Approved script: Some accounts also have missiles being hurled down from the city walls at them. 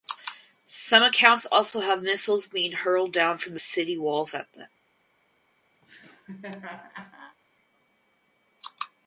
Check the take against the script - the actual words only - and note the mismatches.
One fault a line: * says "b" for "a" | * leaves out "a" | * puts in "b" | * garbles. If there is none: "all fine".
all fine